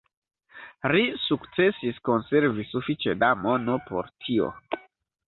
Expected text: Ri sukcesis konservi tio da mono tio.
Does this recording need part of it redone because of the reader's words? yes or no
yes